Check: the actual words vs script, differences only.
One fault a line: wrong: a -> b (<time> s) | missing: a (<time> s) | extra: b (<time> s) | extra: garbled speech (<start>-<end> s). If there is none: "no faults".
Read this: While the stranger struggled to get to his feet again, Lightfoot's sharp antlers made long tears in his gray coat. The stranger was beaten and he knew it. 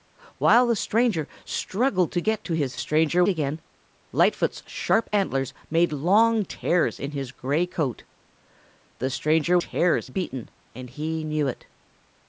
wrong: feet -> stranger (2.8 s)
wrong: was -> tears (9.5 s)